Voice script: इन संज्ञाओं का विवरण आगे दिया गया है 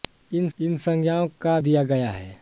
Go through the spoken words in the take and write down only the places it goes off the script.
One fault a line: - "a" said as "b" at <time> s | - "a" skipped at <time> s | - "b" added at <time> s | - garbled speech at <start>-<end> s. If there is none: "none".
- "इन" added at 0.6 s
- "विवरण आगे" skipped at 1.6 s